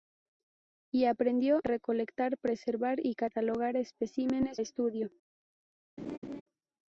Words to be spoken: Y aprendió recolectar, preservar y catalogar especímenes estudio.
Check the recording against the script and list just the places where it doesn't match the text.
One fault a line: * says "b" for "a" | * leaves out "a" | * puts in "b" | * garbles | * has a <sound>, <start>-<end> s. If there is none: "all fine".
* has a laugh, 6.0-6.4 s